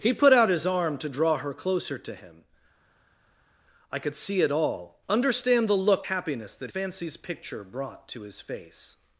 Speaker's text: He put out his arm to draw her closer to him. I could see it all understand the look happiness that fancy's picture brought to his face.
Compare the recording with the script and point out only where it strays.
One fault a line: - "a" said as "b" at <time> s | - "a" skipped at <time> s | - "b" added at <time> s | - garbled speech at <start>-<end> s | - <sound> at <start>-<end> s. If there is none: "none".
none